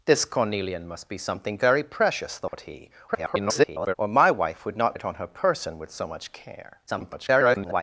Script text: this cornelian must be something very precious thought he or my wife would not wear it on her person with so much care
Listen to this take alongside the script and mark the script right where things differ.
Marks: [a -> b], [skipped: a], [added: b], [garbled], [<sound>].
this cornelian must be something very precious thought [dropout] he [garbled] or my wife would not [skipped: wear] it on her person with so much care [garbled]